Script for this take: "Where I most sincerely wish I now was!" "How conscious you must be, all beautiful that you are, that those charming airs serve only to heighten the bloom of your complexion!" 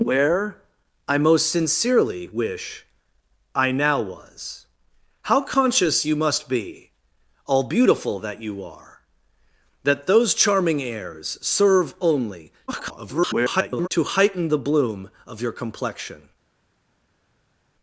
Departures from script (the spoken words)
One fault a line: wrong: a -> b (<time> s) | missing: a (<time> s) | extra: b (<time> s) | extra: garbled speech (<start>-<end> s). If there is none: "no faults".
extra: garbled speech (12.7-13.9 s)